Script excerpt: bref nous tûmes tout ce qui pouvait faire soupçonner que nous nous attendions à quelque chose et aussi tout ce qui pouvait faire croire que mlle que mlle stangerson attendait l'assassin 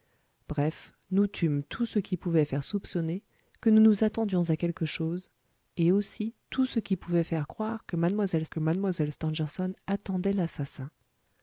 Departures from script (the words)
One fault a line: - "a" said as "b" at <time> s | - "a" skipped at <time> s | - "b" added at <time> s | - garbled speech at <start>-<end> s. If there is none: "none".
none